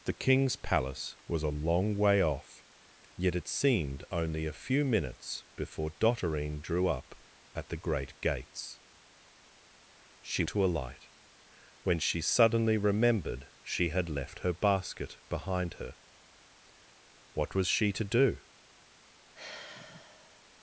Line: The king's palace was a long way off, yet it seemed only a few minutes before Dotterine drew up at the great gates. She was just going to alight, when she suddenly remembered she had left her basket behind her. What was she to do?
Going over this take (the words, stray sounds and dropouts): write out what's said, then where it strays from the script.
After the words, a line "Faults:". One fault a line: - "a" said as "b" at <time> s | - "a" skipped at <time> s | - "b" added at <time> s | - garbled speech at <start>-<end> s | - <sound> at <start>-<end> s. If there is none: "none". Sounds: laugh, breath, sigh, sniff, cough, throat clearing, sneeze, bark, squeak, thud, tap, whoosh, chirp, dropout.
The king's palace was a long way off, yet it seemed only a few minutes before Dotterine drew up at the great gates. She to alight, when she suddenly remembered she had left her basket behind her. What was she to do?
Faults:
- "was just going" skipped at 10.4 s
- sigh at 19.3-20.4 s